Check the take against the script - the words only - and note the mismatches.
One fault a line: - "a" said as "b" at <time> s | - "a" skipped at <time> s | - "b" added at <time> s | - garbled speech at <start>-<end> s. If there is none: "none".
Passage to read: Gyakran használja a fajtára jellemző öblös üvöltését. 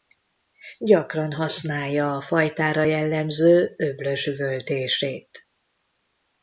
none